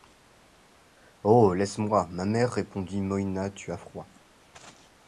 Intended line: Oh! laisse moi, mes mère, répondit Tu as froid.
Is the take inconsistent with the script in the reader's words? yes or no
yes